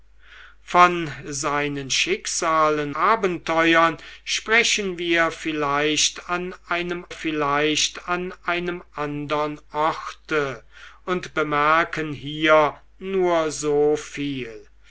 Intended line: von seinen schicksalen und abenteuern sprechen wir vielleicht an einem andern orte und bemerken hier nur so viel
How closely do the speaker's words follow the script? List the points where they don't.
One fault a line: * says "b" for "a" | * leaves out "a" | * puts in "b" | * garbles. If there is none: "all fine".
* leaves out "und"
* puts in "vielleicht an einem"